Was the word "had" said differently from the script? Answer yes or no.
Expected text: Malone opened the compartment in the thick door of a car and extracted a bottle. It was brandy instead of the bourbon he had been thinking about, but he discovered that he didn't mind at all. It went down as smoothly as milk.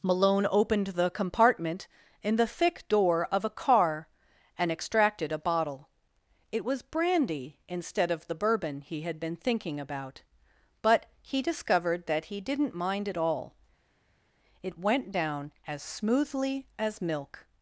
no